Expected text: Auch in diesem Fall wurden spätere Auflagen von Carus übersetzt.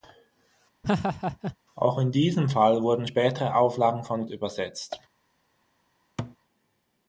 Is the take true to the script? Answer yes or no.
no